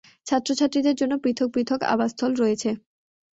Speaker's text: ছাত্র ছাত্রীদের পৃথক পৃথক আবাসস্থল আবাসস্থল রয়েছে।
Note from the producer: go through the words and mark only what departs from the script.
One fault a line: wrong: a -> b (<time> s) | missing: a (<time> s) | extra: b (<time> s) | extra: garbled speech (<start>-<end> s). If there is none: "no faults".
extra: জন্য (0.9 s)
missing: আবাসস্থল (2.3 s)